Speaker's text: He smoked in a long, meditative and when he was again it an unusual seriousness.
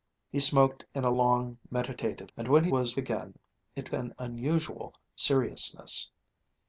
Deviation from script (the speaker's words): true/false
false